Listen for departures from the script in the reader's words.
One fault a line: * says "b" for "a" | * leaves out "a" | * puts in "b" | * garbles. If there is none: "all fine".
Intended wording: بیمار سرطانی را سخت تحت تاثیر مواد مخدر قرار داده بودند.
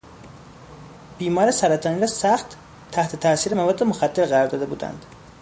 all fine